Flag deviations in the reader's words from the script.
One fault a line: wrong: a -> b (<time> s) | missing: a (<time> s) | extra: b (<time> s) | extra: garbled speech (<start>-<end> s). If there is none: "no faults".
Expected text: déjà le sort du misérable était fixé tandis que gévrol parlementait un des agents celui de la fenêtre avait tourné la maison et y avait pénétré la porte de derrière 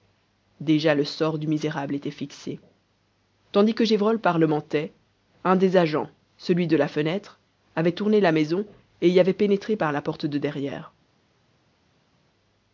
extra: par (9.8 s)